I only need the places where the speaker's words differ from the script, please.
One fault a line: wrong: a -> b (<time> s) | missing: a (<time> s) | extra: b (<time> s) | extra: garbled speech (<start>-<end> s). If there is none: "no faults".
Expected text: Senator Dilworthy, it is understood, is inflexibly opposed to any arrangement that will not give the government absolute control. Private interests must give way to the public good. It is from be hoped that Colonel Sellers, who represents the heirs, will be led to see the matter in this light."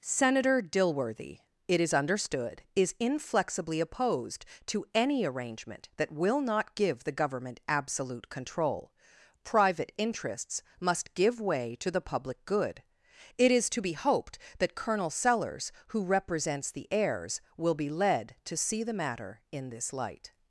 wrong: from -> to (13.7 s)